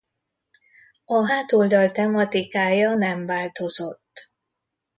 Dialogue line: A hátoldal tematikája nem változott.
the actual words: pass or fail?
pass